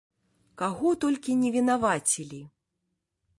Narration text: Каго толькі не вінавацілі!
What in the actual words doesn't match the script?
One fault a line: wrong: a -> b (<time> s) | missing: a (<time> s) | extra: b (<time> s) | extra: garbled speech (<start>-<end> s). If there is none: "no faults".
no faults